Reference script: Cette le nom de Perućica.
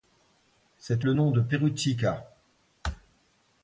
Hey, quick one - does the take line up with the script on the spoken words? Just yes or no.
yes